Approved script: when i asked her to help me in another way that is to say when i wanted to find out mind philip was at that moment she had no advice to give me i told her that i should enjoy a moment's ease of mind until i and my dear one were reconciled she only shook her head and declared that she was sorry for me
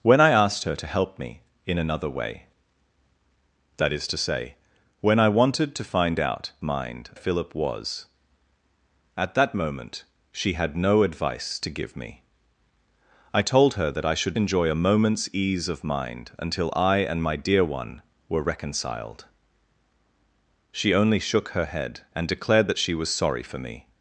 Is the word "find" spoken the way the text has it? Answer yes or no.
yes